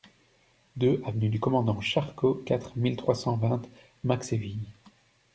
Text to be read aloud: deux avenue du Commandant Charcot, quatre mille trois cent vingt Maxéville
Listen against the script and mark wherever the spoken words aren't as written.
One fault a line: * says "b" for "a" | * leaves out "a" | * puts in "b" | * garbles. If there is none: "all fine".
all fine